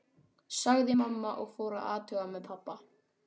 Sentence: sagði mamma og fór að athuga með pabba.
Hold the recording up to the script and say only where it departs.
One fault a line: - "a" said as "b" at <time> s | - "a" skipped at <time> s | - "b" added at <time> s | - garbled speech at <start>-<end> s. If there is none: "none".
none